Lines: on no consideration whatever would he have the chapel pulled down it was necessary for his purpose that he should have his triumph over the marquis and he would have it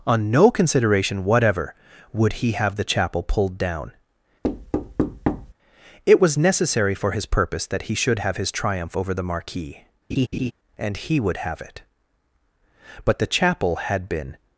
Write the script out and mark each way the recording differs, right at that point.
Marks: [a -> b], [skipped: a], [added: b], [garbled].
on no consideration whatever would he have the chapel pulled down it was necessary for his purpose that he should have his triumph over the marquis and he would have it [added: but the chapel had been]